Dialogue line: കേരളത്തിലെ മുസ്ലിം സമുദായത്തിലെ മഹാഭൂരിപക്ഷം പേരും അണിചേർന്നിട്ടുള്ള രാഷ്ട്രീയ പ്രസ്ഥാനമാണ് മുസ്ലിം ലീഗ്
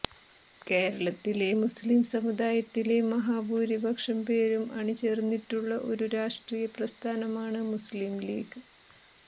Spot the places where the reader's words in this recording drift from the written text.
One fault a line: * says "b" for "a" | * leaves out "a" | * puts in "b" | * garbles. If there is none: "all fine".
* puts in "ഒരു"